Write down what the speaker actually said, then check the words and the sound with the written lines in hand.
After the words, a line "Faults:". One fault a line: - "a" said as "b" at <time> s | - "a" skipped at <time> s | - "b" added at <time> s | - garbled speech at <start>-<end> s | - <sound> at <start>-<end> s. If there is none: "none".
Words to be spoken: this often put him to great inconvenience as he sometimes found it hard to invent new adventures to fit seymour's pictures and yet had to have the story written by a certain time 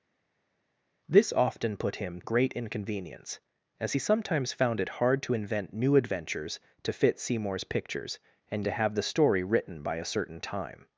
this often put him great inconvenience as he sometimes found it hard to invent new adventures to fit seymour's pictures and to have the story written by a certain time
Faults:
- "to" skipped at 2.2 s
- "yet had" skipped at 8.6 s